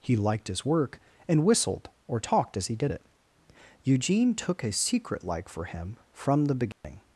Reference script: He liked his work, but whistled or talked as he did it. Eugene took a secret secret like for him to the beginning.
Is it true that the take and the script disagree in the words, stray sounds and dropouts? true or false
true